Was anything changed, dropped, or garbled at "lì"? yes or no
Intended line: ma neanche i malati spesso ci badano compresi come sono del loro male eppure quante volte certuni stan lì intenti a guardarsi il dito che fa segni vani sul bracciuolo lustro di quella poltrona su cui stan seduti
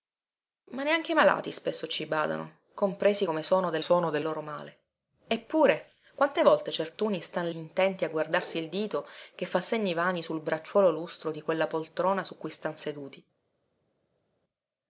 yes